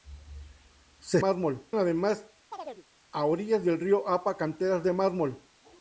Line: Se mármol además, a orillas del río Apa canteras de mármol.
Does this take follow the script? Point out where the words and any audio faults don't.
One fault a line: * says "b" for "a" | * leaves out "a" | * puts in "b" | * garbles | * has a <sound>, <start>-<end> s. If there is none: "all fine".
* has a chirp, 2.5-2.8 s